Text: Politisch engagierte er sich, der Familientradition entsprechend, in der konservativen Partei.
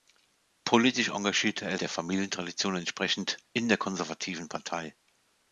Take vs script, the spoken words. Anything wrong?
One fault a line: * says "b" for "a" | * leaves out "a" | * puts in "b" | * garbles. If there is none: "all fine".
* leaves out "sich"